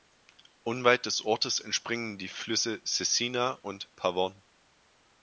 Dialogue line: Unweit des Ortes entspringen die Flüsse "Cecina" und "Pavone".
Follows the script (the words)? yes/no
yes